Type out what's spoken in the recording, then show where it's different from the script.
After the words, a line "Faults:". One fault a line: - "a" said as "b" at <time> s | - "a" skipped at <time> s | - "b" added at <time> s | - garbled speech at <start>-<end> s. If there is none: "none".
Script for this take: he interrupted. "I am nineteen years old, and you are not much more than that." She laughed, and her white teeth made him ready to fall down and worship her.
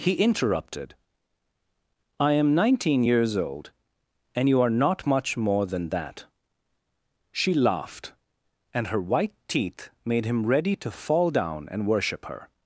he interrupted. "I am nineteen years old, and you are not much more than that." She laughed, and her white teeth made him ready to fall down and worship her.
Faults:
none